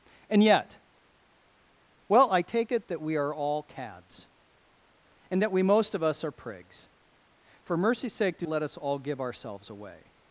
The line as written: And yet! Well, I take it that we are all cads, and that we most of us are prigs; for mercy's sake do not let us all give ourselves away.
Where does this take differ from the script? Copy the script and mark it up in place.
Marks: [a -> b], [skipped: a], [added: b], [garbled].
And yet! Well, I take it that we are all cads, and that we most of us are prigs; for mercy's sake do [skipped: not] let us all give ourselves away.